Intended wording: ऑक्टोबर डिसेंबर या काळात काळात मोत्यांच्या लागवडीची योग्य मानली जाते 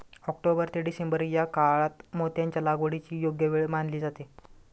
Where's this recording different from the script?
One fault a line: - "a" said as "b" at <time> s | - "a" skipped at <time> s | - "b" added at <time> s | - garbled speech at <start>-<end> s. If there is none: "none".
- "ते" added at 0.7 s
- "काळात" skipped at 2.0 s
- "वेळ" added at 3.5 s